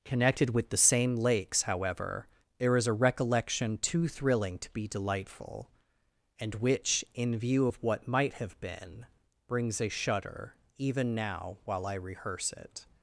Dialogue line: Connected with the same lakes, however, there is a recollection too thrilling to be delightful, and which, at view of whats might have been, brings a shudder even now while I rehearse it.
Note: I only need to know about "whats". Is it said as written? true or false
false